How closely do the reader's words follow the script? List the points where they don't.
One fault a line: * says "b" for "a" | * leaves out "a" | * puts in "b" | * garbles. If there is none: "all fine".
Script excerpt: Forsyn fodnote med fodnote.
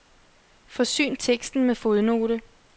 * says "teksten" for "fodnote"